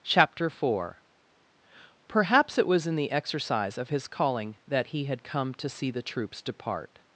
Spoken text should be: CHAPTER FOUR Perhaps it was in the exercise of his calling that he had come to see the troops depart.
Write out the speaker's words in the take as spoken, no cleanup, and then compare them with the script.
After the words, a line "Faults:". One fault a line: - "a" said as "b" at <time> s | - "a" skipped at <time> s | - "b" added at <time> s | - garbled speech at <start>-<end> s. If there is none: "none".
CHAPTER FOUR Perhaps it was in the exercise of his calling that he had come to see the troops depart.
Faults:
none